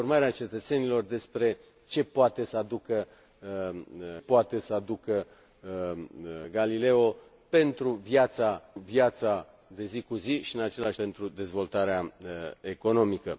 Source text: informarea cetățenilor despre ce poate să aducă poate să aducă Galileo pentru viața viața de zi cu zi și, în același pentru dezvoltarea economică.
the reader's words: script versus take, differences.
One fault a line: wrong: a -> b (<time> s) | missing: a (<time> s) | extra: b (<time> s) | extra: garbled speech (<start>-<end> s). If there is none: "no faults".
no faults